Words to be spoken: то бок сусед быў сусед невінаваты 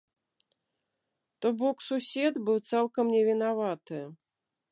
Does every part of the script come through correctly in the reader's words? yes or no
no